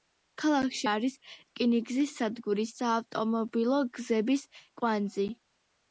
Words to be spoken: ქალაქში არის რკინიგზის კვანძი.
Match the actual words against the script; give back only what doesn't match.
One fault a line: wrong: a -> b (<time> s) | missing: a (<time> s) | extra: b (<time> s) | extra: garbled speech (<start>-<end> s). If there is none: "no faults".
extra: სადგური საავტომობილო გზების (2.2 s)